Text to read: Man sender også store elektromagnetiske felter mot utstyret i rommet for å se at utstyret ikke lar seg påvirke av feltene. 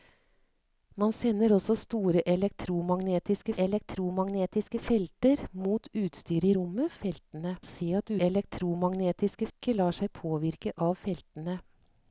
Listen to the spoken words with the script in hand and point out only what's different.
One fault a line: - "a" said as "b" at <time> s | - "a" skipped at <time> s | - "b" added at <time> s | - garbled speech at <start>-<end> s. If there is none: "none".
- "elektromagnetiske" added at 3.6 s
- "for" said as "feltene" at 7.0 s
- "utstyret" said as "elektromagnetiske" at 8.3 s